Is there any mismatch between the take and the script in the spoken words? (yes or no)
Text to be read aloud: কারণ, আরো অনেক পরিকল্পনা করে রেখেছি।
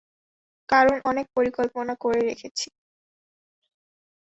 yes